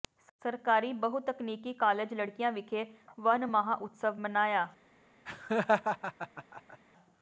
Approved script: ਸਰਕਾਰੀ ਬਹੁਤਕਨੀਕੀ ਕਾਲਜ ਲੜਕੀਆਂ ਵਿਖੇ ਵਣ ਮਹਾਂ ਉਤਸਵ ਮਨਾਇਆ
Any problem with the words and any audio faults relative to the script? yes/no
yes